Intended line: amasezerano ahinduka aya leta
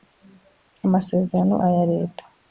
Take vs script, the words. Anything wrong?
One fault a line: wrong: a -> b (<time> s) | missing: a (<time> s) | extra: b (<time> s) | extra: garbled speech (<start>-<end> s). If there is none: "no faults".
missing: ahinduka (1.6 s)